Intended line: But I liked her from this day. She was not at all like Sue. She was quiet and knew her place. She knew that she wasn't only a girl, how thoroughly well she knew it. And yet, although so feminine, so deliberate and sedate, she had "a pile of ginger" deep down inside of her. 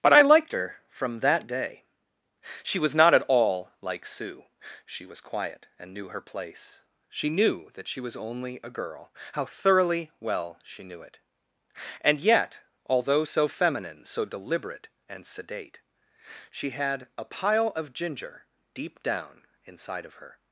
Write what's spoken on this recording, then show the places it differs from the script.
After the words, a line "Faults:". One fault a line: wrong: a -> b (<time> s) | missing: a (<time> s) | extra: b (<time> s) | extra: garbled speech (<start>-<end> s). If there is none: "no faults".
But I liked her from that day. She was not at all like Sue. She was quiet and knew her place. She knew that she was only a girl, how thoroughly well she knew it. And yet, although so feminine, so deliberate and sedate, she had "a pile of ginger" deep down inside of her.
Faults:
wrong: this -> that (1.2 s)
wrong: wasn't -> was (8.0 s)